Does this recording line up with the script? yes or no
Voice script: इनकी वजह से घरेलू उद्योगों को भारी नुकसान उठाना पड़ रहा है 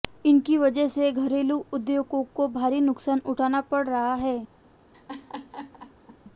yes